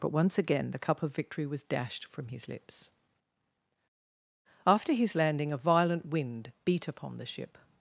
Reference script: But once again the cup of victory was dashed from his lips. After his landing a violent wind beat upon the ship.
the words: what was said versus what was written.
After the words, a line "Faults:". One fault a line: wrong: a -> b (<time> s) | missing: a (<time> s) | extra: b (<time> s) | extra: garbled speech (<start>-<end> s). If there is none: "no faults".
But once again the cup of victory was dashed from his lips. After his landing a violent wind beat upon the ship.
Faults:
no faults